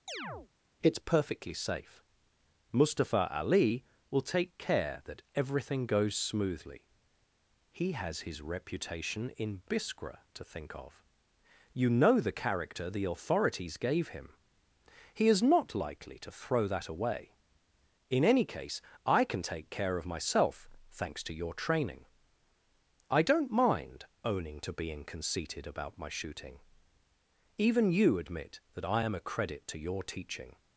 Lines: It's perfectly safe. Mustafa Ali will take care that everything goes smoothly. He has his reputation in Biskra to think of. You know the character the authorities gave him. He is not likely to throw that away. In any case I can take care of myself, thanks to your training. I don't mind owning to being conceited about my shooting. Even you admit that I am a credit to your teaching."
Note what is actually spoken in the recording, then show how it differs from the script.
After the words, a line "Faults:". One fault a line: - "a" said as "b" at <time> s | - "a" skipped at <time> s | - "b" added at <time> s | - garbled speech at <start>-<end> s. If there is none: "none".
It's perfectly safe. Mustafa Ali will take care that everything goes smoothly. He has his reputation in Biskra to think of. You know the character the authorities gave him. He is not likely to throw that away. In any case I can take care of myself, thanks to your training. I don't mind owning to being conceited about my shooting. Even you admit that I am a credit to your teaching."
Faults:
none